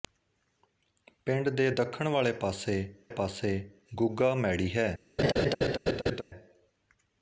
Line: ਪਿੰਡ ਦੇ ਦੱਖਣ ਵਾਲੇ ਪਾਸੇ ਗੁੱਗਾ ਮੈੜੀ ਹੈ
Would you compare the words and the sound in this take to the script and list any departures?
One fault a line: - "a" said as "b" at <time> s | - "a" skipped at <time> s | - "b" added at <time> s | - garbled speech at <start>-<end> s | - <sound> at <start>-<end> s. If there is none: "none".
- "ਪਾਸੇ" added at 3.1 s
- laugh at 5.2-6.2 s